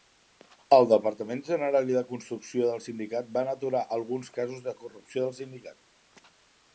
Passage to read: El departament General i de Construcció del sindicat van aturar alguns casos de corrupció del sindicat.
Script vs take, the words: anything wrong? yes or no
no